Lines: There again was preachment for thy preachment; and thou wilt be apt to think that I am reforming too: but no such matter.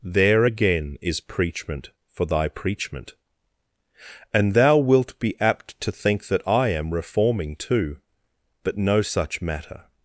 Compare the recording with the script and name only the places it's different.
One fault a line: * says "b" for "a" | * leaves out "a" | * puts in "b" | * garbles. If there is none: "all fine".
* says "is" for "was"